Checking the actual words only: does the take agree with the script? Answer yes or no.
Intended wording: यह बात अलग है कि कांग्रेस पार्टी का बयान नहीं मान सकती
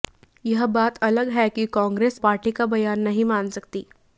yes